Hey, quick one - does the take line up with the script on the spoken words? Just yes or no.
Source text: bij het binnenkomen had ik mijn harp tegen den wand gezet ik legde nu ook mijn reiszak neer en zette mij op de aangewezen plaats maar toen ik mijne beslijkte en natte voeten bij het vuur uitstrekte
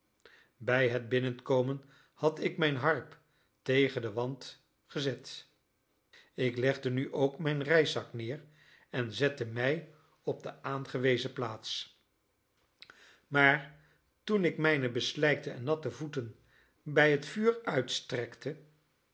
yes